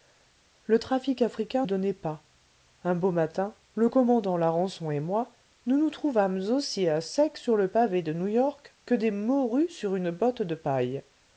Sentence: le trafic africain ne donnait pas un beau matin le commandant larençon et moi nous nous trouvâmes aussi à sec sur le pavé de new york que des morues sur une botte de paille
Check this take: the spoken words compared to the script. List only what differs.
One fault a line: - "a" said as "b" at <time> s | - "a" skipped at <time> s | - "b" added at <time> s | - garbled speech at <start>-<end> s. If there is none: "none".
- "ne" skipped at 1.7 s